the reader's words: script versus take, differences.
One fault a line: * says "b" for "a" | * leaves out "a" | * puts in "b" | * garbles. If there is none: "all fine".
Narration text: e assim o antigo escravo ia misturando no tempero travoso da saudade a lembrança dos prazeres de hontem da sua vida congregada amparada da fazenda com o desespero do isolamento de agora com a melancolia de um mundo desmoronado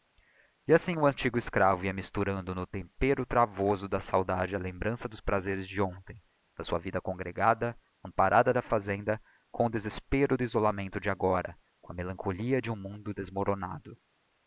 all fine